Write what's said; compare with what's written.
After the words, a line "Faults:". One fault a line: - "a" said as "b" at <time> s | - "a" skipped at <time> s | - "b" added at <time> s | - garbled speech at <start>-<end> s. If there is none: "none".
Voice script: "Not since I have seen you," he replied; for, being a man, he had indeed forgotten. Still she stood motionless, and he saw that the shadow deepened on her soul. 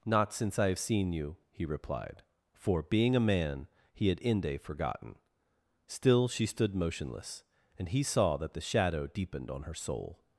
"Not since I have seen you," he replied; for, being a man, he had inde forgotten. Still she stood motionless, and he saw that the shadow deepened on her soul.
Faults:
- "indeed" said as "inde" at 4.2 s